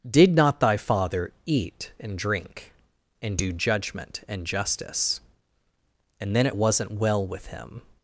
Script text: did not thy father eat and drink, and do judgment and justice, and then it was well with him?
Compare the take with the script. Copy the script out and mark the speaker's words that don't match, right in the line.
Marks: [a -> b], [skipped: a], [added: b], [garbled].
did not thy father eat and drink, and do judgment and justice, and then it [was -> wasn't] well with him?